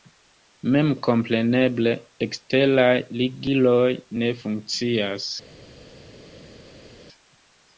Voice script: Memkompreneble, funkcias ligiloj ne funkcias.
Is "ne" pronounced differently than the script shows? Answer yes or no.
no